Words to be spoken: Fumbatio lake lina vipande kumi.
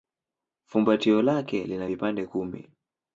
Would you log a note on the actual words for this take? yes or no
no